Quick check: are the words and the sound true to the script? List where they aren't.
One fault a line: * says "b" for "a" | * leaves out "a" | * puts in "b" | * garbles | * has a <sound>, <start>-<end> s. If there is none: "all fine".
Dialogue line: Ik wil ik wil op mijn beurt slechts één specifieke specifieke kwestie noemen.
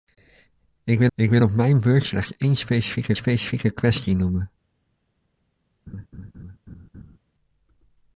* has a laugh, 5.9-7.2 s